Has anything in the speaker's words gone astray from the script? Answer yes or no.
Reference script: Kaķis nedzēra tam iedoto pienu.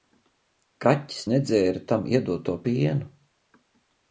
no